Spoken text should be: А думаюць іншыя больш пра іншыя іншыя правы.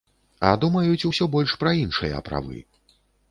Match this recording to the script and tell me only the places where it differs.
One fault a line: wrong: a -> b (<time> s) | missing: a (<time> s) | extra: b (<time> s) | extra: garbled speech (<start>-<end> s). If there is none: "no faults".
wrong: іншыя -> усё (1.1 s)
missing: іншыя (2.2 s)